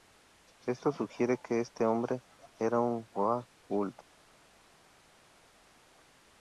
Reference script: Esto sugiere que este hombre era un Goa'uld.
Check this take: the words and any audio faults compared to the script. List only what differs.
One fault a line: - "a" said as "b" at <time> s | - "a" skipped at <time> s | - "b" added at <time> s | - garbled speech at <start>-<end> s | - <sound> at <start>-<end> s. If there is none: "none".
none